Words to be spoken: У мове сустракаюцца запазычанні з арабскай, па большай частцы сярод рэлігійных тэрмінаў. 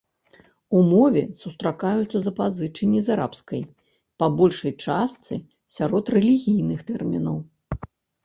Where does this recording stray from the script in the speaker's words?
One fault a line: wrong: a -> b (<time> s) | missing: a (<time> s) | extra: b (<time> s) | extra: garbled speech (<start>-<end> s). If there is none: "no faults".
no faults